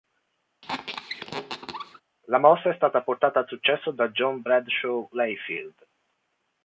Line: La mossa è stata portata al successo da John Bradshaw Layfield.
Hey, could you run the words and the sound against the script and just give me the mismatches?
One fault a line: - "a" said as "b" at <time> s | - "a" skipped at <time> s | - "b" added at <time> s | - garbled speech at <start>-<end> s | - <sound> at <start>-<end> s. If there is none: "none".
- squeak at 0.6-2.0 s